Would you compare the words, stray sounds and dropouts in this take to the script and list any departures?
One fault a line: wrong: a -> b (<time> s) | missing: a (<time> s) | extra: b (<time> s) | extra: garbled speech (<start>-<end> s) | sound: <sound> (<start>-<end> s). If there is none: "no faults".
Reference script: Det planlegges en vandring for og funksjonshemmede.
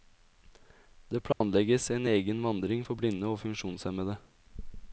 sound: dropout (1.3-1.4 s)
extra: egen (2.1 s)
extra: blinde (3.0 s)